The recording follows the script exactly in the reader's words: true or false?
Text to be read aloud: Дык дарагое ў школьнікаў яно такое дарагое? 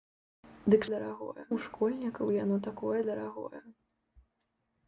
true